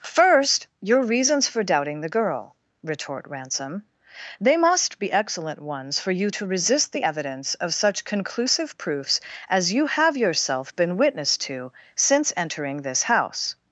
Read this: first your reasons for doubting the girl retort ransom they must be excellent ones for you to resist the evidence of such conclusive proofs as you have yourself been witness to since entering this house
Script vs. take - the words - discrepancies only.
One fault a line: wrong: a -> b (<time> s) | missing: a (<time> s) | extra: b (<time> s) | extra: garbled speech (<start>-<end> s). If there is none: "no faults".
no faults